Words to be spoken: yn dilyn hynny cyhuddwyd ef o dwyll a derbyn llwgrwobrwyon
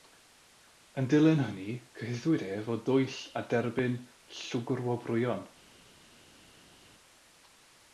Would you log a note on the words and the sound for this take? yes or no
no